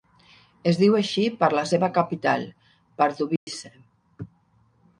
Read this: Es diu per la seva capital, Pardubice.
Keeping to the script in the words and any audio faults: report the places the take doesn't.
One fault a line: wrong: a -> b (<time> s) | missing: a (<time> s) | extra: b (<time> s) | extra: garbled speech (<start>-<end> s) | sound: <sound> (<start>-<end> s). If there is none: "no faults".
extra: així (1.0 s)
sound: dropout (3.4-3.5 s)